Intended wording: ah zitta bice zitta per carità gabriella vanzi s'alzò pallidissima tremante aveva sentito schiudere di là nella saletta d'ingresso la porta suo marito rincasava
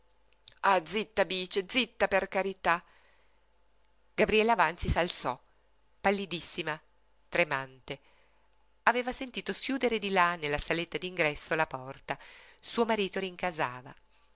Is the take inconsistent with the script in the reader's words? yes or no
no